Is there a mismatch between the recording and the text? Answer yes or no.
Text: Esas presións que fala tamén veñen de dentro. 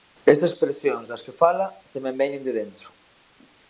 yes